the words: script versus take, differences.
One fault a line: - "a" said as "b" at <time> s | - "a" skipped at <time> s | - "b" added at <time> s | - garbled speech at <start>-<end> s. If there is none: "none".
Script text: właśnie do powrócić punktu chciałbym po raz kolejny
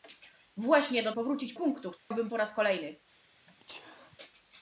none